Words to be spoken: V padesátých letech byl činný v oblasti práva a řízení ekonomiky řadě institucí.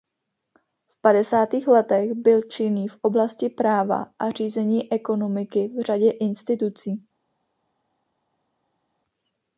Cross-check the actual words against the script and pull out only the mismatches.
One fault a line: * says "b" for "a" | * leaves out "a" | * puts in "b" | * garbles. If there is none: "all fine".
* puts in "v"